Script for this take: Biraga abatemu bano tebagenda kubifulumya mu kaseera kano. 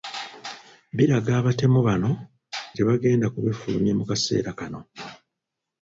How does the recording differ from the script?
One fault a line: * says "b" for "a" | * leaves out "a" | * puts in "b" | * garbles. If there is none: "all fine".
all fine